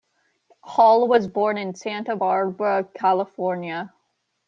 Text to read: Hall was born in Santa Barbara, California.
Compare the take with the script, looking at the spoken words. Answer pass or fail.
pass